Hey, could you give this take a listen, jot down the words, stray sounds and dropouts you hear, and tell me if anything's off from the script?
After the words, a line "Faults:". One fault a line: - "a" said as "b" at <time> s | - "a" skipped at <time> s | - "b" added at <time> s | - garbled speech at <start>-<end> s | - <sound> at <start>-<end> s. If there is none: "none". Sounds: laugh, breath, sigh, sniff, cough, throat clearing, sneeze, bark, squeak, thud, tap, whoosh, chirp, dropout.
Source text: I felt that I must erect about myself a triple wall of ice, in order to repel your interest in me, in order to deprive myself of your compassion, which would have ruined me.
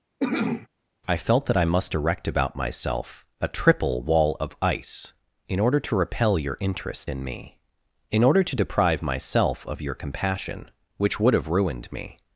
I felt that I must erect about myself a triple wall of ice, in order to repel your interest in me, in order to deprive myself of your compassion, which would have ruined me.
Faults:
- cough at 0.2-0.7 s